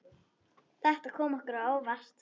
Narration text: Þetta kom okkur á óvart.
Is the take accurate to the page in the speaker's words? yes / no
yes